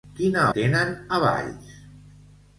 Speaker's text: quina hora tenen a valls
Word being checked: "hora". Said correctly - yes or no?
no